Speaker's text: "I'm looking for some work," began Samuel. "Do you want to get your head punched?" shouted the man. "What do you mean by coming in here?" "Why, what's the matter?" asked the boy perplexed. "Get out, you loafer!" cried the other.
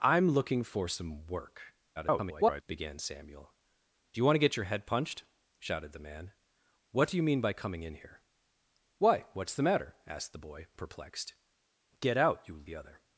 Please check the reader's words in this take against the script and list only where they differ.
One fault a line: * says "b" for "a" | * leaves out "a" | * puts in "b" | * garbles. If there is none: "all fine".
* garbles
* leaves out "loafer cried"